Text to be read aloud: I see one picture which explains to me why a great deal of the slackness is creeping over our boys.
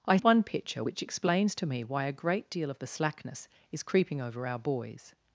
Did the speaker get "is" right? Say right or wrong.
right